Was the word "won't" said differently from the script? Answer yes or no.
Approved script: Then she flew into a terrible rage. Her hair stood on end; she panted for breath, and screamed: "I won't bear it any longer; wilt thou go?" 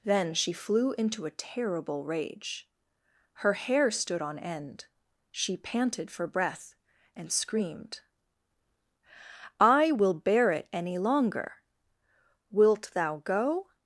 yes